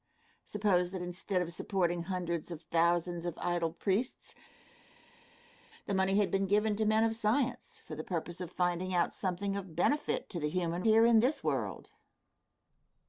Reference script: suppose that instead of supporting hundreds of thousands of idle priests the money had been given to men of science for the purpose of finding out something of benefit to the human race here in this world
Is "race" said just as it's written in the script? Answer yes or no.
no